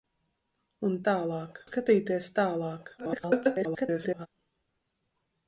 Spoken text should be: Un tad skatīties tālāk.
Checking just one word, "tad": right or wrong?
wrong